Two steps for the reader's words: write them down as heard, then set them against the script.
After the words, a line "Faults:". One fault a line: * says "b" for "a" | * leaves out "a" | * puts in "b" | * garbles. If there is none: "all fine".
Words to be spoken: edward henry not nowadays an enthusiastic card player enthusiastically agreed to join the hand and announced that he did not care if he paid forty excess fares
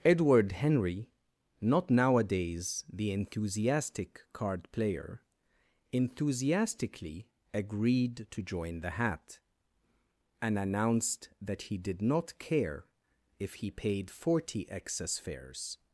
edward henry not nowadays the enthusiastic card player enthusiastically agreed to join the hat and announced that he did not care if he paid forty excess fares
Faults:
* says "the" for "an"
* says "hat" for "hand"